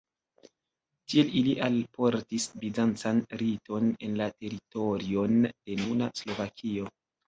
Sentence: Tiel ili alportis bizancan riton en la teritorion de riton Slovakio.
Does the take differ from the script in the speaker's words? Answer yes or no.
yes